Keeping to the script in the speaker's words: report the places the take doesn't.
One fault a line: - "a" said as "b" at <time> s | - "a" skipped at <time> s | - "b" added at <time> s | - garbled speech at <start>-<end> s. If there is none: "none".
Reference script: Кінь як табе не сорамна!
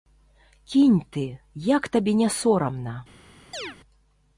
- "ты" added at 1.2 s